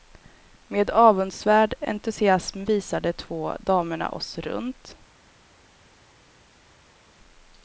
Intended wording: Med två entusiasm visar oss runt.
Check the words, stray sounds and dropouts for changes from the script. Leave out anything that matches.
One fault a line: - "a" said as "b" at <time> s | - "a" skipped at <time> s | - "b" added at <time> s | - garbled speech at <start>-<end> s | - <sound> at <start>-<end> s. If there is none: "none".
- "två" said as "avundsvärd" at 0.9 s
- "de två damerna" added at 3.0 s